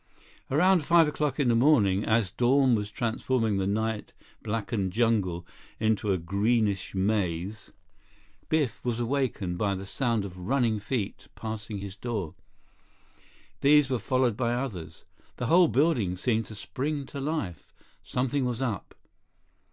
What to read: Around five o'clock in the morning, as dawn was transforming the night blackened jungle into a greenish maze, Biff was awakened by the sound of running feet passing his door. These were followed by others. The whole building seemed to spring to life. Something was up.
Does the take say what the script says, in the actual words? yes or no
yes